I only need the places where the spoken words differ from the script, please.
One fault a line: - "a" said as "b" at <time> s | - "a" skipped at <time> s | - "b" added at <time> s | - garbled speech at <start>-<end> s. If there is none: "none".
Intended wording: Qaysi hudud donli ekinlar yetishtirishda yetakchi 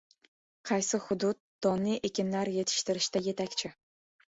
none